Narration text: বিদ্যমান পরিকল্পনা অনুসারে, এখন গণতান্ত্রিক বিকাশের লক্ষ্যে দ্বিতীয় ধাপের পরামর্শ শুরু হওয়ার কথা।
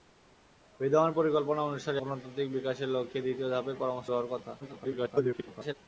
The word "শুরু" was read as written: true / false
false